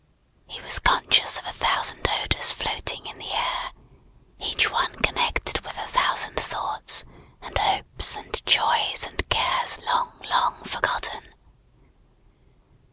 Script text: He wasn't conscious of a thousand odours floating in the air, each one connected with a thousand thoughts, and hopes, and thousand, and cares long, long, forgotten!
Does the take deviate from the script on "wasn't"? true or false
true